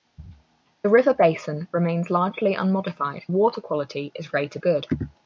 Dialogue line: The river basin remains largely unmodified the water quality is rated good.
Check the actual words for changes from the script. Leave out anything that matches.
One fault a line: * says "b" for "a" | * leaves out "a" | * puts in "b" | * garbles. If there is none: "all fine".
all fine